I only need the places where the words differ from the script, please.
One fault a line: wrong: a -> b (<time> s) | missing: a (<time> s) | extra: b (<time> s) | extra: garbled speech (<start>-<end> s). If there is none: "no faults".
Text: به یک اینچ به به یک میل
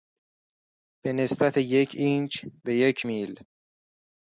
extra: نسبت (1.1 s)
missing: به (2.8 s)